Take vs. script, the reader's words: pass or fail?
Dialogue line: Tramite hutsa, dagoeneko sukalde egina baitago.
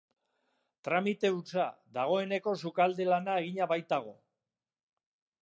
fail